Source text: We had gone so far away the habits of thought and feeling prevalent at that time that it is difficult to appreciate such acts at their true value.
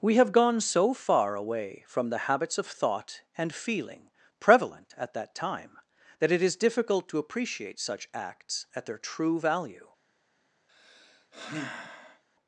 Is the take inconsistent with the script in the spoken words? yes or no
yes